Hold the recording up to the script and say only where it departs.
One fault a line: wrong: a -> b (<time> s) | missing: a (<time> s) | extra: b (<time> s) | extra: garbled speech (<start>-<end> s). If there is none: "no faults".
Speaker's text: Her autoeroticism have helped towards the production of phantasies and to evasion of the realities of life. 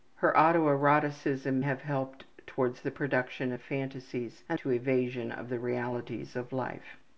no faults